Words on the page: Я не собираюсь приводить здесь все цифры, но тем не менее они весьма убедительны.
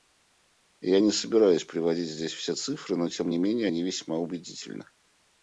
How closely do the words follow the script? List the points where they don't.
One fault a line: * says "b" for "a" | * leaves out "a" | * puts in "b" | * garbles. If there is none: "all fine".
all fine